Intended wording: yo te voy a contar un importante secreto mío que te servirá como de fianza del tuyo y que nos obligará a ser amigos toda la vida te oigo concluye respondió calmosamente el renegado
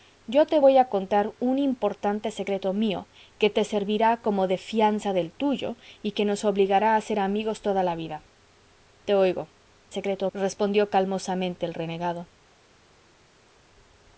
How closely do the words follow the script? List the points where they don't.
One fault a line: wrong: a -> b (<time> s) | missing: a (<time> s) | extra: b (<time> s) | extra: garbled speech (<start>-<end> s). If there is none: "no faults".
wrong: concluye -> secreto (9.9 s)